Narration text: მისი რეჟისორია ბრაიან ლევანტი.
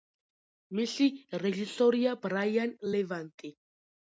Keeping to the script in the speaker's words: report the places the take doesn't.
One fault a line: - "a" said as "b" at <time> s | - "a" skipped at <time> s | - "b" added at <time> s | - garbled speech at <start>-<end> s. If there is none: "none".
none